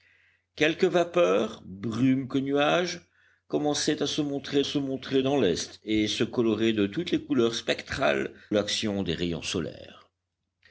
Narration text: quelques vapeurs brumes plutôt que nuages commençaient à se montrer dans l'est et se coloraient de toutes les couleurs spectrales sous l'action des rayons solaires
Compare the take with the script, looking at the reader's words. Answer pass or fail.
fail